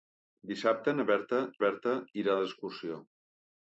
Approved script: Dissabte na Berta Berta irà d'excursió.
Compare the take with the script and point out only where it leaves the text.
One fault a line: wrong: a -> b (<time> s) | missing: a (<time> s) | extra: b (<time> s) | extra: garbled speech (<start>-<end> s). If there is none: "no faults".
no faults